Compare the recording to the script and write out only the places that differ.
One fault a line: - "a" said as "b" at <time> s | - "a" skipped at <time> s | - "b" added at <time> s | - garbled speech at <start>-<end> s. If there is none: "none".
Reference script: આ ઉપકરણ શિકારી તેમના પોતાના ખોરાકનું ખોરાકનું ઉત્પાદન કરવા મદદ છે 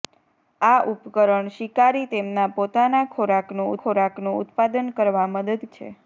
none